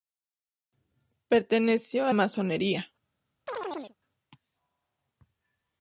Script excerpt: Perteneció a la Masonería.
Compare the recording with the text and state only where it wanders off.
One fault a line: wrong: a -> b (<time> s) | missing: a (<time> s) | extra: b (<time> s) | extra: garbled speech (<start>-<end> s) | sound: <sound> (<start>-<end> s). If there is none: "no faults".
missing: la (2.1 s)
sound: chirp (3.5-4.0 s)